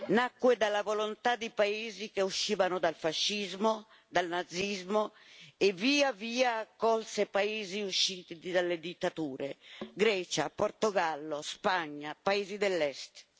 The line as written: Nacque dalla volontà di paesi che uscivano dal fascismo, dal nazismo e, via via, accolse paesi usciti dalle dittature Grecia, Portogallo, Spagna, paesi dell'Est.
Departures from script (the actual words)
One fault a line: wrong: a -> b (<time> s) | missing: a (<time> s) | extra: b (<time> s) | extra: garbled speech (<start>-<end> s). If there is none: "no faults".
no faults